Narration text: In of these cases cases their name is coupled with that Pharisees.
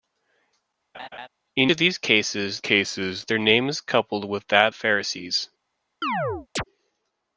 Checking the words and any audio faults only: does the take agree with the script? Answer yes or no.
no